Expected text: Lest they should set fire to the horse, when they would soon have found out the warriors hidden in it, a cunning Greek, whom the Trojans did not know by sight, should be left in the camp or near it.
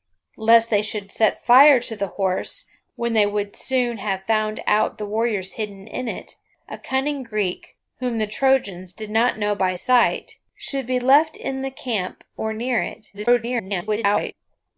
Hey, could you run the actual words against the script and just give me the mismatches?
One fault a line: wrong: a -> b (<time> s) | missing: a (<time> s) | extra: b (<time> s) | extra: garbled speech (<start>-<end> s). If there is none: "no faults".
extra: garbled speech (13.1-14.3 s)